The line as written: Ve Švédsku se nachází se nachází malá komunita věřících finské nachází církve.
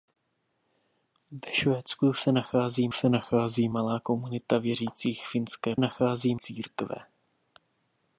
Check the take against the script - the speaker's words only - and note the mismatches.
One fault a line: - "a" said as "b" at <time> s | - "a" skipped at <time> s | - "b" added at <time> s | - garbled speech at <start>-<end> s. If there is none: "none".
none